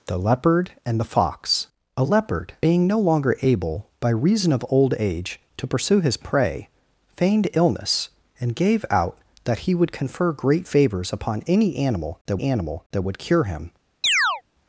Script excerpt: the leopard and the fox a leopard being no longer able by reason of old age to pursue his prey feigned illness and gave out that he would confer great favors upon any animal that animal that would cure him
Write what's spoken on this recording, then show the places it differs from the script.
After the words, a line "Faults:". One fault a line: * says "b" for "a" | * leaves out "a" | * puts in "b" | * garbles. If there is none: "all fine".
the leopard and the fox a leopard being no longer able by reason of old age to pursue his prey feigned illness and gave out that he would confer great favors upon any animal that animal that would cure him
Faults:
all fine